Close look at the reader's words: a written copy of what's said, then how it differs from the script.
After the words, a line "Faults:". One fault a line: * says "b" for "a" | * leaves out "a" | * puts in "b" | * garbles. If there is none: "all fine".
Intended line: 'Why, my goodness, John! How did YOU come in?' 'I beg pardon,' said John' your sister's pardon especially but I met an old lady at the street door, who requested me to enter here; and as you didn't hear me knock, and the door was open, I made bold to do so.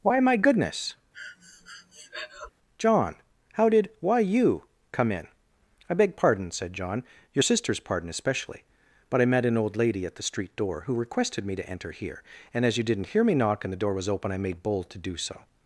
'Why, my goodness, John! How did why YOU come in?' 'I beg pardon,' said John' your sister's pardon especially but I met an old lady at the street door, who requested me to enter here; and as you didn't hear me knock, and the door was open, I made bold to do so.
Faults:
* puts in "why"